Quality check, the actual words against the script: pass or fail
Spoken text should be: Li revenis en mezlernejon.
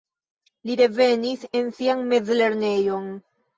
fail